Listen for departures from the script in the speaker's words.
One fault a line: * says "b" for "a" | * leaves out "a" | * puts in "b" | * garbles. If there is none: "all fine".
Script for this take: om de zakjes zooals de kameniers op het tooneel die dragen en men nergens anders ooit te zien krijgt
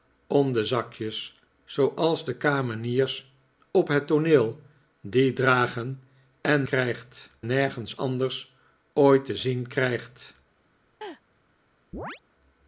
* says "krijgt" for "men"